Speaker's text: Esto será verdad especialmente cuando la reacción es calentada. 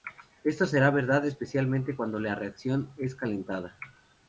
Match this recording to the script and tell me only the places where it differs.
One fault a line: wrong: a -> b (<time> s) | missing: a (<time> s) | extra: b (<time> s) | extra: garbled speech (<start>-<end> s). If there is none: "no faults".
no faults